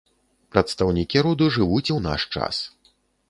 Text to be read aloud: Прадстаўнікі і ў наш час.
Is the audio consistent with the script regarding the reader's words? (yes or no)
no